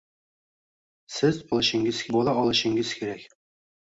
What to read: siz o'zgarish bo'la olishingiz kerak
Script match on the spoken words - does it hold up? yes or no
no